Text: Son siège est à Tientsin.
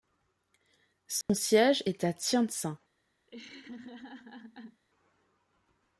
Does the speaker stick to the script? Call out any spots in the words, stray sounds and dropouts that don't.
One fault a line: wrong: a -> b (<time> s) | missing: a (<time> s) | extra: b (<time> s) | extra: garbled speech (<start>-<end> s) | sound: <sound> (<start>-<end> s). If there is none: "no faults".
sound: dropout (1.2-1.3 s)
sound: laugh (3.3-4.8 s)